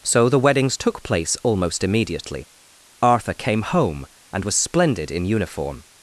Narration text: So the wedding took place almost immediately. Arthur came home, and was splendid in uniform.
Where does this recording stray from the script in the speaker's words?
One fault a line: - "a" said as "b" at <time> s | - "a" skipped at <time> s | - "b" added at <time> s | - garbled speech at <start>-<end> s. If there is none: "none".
- "wedding" said as "weddings" at 0.4 s